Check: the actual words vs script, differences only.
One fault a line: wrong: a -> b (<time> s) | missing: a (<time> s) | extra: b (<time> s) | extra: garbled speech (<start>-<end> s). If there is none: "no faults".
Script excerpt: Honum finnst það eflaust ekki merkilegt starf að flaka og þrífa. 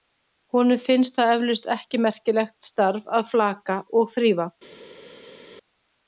no faults